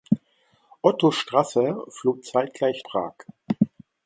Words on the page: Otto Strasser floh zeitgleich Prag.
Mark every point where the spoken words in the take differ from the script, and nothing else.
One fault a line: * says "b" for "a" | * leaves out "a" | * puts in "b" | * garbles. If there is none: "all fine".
all fine